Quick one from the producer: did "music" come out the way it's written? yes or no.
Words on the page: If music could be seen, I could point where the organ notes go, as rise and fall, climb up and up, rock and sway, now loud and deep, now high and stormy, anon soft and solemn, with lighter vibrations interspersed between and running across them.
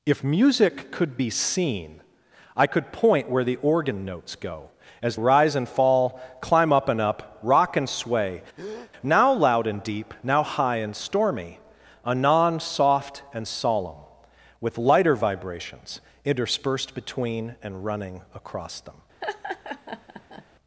yes